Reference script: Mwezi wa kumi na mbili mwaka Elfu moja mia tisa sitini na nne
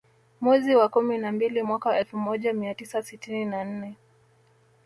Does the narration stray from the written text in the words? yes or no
no